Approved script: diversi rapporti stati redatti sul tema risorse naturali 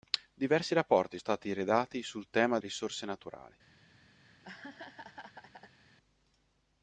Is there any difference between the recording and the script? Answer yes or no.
no